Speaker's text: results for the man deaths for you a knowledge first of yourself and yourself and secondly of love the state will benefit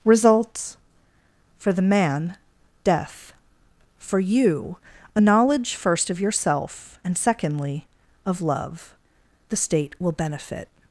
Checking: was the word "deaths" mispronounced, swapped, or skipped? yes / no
yes